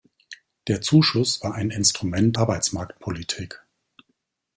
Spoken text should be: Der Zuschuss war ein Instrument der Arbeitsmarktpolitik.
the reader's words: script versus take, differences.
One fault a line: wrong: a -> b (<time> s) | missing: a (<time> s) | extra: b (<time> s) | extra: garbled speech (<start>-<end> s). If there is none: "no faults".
missing: der (2.4 s)